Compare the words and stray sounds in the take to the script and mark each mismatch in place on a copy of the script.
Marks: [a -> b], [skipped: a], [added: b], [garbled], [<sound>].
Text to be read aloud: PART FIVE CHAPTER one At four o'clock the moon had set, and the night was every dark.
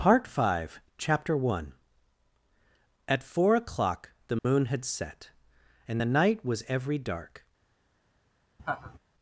PART FIVE CHAPTER one At four o'clock the moon [dropout] had set, and the night was every dark. [laugh]